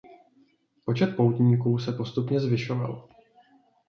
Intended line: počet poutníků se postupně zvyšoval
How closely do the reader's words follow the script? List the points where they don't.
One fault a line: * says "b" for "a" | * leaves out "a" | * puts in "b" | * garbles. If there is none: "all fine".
all fine